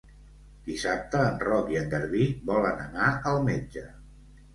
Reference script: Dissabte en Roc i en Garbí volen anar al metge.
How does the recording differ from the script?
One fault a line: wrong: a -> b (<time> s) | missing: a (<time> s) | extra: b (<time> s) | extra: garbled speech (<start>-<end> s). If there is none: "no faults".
no faults